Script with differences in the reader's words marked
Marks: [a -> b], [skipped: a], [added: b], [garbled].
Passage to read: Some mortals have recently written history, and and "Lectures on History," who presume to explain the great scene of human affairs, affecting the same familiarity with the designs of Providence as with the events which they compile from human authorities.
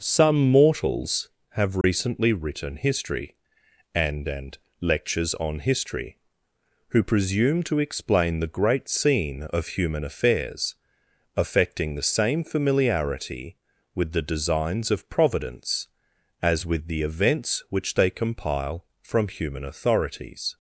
Some mortals have recently written history, and and "Lectures on History," who presume to explain the great scene of human affairs, affecting the same familiarity with the designs of Providence as with the events which they compile from human authorities.